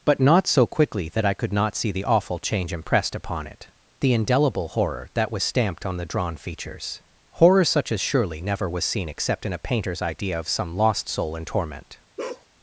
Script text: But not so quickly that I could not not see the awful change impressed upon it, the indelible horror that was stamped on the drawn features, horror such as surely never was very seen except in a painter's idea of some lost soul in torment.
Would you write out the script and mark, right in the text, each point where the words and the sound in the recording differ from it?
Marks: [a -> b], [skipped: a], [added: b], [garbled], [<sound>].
But not so quickly that I could not [skipped: not] see the awful change impressed upon it, the indelible horror that was stamped on the drawn features, horror such as surely never was [skipped: very] seen except in a painter's idea of some lost soul in torment. [bark]